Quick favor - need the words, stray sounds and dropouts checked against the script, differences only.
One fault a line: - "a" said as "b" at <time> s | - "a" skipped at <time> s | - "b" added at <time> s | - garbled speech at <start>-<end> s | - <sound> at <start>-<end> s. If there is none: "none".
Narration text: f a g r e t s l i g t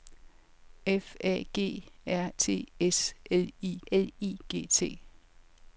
- "e" skipped at 2.3 s
- "l i" added at 3.9 s